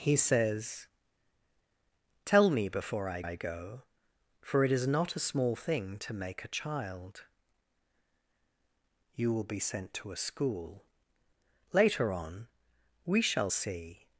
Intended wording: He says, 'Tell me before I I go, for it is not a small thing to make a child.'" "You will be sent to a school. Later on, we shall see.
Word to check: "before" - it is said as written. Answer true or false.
true